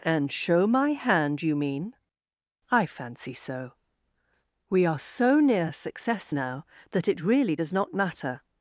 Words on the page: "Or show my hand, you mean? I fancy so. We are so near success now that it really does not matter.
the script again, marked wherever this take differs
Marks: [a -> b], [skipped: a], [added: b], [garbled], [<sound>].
["Or -> And] show my hand, you mean? I fancy so. We are so near success now that it really does not matter.